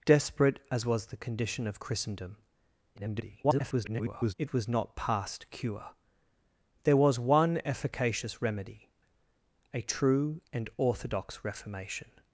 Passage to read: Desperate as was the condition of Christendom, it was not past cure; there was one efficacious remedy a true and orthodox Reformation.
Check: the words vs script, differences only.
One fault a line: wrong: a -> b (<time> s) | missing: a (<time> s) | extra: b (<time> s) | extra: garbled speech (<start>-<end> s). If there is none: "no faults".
extra: garbled speech (2.9-4.3 s)